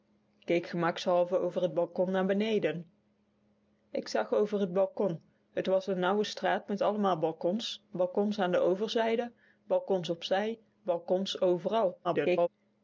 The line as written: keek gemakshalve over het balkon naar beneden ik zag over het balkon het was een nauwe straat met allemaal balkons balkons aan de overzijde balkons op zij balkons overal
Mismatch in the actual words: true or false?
true